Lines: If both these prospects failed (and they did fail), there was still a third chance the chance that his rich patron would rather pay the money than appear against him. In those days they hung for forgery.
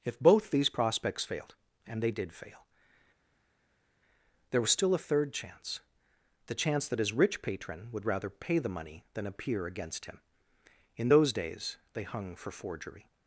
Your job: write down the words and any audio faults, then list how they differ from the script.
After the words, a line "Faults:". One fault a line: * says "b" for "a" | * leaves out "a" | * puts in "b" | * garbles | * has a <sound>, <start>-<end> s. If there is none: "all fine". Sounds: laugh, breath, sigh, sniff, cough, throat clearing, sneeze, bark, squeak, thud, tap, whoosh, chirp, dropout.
If both these prospects failed (and they did fail), there was still a third chance the chance that his rich patron would rather pay the money than appear against him. In those days they hung for forgery.
Faults:
all fine